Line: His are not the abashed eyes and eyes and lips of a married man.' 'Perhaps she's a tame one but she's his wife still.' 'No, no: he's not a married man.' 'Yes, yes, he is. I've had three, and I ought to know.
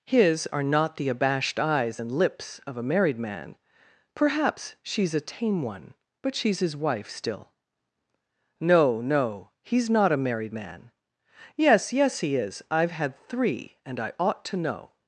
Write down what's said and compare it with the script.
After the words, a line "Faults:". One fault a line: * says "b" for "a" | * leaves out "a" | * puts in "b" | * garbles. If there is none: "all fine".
His are not the abashed eyes and lips of a married man.' 'Perhaps she's a tame one but she's his wife still.' 'No, no: he's not a married man.' 'Yes, yes, he is. I've had three, and I ought to know.
Faults:
* leaves out "eyes and"